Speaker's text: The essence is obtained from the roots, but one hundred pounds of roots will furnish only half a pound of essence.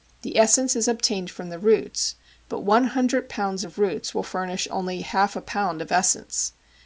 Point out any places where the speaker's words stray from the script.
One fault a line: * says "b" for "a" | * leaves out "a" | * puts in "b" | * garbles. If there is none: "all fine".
all fine